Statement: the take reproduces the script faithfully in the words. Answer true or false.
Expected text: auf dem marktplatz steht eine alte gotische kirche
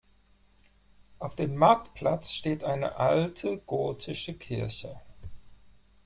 true